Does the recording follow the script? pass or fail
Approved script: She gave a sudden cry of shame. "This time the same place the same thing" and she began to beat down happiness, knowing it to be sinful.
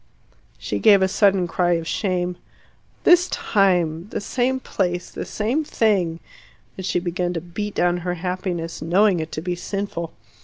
fail